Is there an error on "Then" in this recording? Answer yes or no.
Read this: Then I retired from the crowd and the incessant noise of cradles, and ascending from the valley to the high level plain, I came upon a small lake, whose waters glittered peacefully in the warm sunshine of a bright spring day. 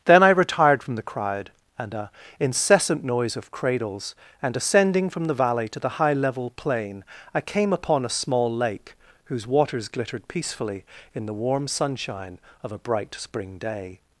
no